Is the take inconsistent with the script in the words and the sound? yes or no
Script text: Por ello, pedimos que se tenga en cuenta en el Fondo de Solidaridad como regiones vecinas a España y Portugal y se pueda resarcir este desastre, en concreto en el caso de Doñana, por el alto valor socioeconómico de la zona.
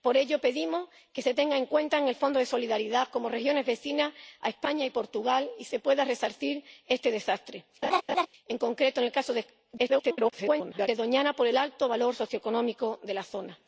yes